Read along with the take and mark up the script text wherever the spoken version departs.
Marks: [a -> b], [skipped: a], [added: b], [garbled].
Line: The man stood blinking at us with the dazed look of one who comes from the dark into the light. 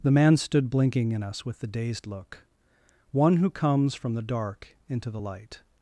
The man stood blinking [at -> in] us with the dazed look [skipped: of] one who comes from the dark into the light.